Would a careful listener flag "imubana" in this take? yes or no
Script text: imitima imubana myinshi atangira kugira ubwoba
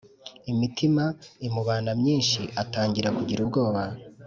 no